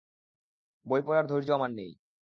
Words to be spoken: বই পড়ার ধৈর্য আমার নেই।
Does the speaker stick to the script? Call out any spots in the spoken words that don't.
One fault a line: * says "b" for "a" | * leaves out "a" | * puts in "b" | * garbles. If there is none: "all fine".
all fine